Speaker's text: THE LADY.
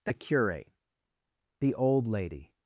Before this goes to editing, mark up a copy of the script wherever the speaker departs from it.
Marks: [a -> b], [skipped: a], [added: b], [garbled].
THE [added: CURATE THE OLD] LADY.